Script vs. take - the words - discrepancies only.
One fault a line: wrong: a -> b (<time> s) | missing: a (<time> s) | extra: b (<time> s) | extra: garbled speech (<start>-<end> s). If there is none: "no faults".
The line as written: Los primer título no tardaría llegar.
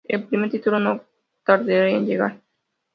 wrong: Los -> El (0.1 s)
extra: en (1.9 s)